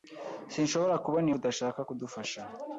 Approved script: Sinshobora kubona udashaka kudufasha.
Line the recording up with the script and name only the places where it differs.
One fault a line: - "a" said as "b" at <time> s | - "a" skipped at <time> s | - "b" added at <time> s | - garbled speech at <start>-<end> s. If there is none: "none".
none